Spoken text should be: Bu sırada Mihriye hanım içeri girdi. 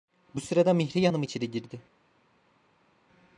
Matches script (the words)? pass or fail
pass